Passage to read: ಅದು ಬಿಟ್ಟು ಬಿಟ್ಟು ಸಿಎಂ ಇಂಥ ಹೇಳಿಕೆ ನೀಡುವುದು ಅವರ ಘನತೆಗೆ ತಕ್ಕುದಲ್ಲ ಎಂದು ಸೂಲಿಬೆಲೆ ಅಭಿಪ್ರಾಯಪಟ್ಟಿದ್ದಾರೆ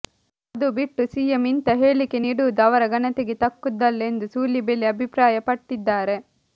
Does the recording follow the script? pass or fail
fail